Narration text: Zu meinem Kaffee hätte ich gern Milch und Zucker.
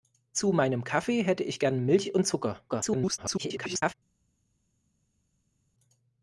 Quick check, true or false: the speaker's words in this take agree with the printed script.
false